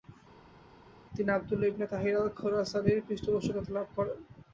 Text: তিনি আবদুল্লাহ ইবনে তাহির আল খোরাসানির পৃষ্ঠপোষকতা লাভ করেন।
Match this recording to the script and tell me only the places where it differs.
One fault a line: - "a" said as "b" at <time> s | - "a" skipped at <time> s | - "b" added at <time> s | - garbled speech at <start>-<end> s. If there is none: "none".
none